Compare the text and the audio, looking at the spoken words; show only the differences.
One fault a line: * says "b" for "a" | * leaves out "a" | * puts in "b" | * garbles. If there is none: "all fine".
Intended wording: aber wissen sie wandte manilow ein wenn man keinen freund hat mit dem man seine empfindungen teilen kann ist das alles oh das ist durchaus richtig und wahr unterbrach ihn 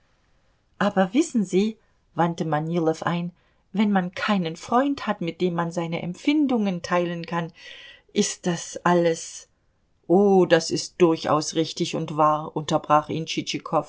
all fine